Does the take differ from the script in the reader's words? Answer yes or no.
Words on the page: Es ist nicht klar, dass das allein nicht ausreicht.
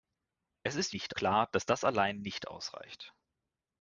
no